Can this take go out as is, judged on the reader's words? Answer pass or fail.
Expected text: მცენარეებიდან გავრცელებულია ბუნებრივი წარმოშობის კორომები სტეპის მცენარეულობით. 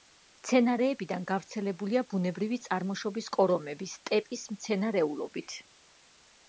pass